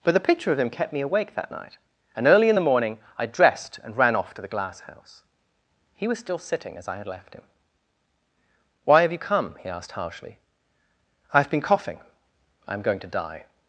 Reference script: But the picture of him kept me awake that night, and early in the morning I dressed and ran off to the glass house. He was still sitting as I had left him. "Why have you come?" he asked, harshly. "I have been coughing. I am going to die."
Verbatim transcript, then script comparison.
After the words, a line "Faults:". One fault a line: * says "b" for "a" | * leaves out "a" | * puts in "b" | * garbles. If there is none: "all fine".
But the picture of him kept me awake that night, and early in the morning I dressed and ran off to the glass house. He was still sitting as I had left him. "Why have you come?" he asked, harshly. "I have been coughing. I am going to die."
Faults:
all fine